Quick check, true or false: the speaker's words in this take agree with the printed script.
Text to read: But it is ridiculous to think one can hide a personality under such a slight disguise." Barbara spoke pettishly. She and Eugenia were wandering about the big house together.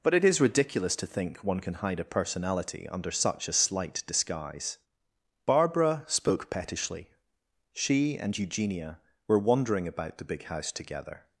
true